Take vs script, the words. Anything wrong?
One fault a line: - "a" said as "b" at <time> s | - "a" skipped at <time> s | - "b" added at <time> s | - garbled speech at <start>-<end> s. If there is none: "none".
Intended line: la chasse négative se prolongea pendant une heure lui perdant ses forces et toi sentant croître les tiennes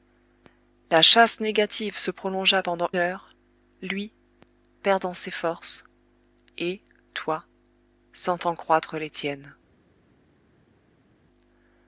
- "une" skipped at 2.9 s